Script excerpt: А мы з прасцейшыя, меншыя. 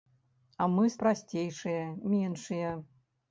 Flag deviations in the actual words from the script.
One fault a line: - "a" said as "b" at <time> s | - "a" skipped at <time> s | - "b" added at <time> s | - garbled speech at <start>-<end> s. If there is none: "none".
none